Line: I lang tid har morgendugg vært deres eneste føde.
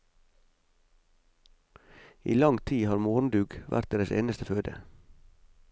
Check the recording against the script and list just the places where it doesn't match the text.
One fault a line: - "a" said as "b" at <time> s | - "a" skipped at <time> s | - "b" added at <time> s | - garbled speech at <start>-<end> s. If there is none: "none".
none